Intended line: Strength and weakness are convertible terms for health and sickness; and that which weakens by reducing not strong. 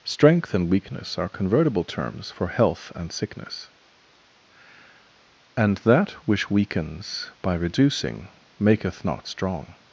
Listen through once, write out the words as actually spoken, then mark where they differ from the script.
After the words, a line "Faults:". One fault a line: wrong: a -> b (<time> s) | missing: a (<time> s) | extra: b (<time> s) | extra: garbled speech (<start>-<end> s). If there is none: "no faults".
Strength and weakness are convertible terms for health and sickness; and that which weakens by reducing maketh not strong.
Faults:
extra: maketh (8.6 s)